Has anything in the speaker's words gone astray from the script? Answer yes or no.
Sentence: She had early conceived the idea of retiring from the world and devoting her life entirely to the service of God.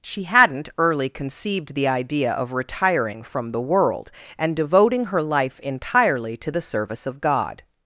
yes